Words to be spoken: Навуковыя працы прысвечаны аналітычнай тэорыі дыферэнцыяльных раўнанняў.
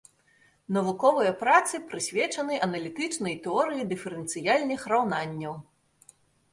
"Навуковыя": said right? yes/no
yes